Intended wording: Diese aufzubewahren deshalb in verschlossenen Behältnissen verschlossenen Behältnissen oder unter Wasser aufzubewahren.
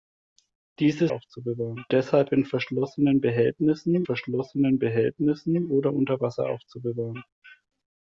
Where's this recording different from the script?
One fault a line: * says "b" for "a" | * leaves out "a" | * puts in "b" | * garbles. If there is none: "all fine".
all fine